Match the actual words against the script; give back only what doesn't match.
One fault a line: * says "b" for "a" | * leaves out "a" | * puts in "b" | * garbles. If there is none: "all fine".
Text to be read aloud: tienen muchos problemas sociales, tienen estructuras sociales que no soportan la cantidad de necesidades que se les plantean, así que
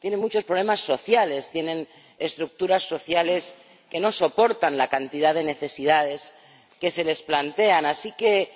all fine